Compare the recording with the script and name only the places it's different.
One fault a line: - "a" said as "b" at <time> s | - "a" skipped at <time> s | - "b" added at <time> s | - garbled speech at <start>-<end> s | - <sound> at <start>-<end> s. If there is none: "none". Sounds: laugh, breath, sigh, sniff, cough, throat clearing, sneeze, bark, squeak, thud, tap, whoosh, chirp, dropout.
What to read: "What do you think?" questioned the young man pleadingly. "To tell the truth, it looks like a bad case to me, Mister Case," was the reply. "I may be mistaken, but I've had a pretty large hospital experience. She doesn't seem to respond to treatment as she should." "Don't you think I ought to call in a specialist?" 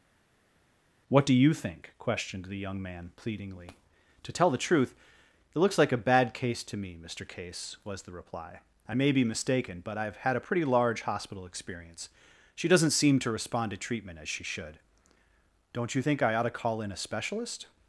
none